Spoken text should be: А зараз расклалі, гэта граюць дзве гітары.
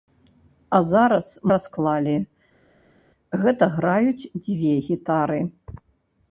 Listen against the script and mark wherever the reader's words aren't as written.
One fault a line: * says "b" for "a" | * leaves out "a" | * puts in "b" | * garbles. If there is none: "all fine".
all fine